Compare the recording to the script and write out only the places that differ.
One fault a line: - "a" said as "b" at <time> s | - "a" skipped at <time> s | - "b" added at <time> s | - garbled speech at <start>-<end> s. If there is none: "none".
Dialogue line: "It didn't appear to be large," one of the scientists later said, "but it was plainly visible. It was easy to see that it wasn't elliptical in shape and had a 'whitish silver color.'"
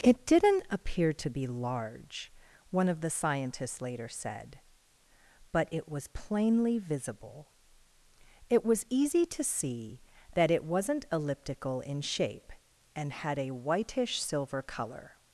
none